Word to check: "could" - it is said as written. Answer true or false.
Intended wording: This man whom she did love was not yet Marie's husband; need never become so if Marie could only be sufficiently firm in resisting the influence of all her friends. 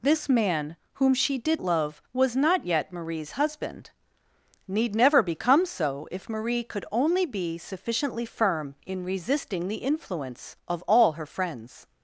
true